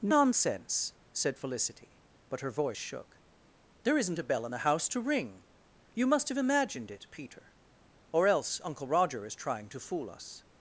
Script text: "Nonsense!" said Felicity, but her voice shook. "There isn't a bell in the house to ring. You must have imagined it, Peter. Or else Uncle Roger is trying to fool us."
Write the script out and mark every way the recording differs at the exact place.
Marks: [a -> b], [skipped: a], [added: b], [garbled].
"Nonsense!" said Felicity, but her voice shook. "There isn't a bell in the house to ring. You must have imagined it, Peter. Or else Uncle Roger is trying to fool us."